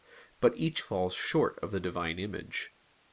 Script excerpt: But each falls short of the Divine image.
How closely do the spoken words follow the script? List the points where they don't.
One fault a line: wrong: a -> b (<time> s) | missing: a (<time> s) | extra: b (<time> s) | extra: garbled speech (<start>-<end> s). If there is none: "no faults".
no faults